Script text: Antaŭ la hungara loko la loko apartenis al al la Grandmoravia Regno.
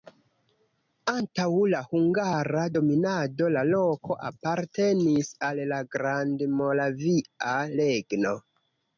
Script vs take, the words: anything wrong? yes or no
yes